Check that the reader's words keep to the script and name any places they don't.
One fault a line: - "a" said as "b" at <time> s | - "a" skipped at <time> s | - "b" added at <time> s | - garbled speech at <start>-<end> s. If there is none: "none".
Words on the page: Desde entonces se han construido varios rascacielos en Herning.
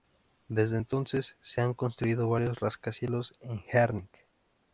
none